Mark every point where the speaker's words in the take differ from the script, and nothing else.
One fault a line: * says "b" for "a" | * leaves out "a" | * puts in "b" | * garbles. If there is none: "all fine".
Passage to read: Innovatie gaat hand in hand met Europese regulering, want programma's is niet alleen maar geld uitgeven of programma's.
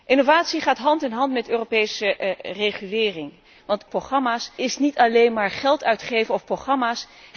all fine